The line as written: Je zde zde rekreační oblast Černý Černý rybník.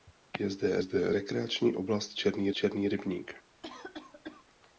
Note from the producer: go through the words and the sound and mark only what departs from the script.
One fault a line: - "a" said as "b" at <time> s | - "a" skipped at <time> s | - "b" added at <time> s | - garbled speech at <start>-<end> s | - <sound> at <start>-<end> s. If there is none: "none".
- cough at 3.6-4.5 s